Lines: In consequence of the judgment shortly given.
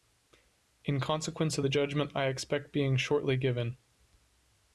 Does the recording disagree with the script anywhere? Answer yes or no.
yes